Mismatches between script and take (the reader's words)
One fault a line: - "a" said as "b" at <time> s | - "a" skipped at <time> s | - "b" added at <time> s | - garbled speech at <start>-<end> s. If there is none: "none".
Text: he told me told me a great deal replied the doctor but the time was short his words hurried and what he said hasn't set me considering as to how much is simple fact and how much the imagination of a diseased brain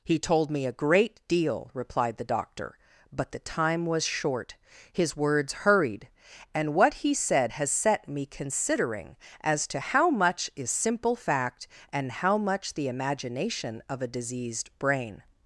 - "told me" skipped at 0.7 s
- "hasn't" said as "has" at 7.5 s